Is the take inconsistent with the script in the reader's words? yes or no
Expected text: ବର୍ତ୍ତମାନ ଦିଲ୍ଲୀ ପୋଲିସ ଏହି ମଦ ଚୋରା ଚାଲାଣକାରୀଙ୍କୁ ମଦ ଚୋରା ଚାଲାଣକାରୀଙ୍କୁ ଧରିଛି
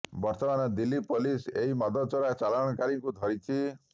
yes